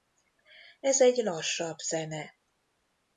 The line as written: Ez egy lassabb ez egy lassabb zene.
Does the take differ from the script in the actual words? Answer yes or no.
yes